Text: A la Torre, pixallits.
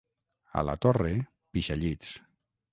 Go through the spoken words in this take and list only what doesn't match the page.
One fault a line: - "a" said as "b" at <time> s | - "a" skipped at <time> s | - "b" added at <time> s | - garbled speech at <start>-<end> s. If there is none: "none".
none